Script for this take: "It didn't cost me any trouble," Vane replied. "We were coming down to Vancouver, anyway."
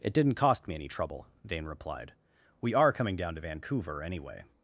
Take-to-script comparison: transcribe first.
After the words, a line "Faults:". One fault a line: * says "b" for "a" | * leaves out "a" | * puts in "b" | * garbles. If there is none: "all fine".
"It didn't cost me any trouble," Vane replied. "We are coming down to Vancouver, anyway."
Faults:
* says "are" for "were"